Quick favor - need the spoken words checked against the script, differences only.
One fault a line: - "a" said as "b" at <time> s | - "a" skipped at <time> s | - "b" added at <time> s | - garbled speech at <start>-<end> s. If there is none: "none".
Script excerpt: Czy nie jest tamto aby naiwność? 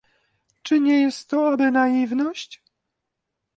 - "tamto" said as "to" at 1.3 s